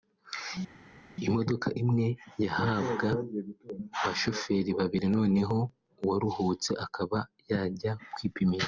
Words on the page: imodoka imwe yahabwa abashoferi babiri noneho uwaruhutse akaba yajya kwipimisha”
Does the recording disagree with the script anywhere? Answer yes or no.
no